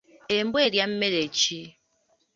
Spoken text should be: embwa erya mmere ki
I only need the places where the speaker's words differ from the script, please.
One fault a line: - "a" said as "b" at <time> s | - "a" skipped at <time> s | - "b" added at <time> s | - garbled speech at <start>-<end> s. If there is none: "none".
none